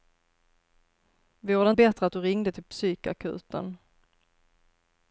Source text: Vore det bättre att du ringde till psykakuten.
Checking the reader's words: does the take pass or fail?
pass